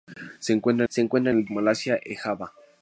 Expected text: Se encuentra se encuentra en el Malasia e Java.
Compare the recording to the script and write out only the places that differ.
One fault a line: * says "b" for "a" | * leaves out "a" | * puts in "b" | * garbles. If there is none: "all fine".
all fine